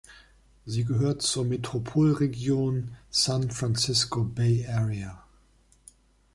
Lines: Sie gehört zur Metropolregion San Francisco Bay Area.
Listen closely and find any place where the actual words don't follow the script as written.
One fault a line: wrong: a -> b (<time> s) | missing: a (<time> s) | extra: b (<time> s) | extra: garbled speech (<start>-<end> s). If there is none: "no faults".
no faults